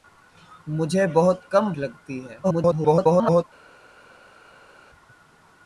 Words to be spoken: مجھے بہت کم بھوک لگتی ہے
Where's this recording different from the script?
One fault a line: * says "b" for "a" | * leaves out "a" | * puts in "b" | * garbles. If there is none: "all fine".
* leaves out "بھوک"
* garbles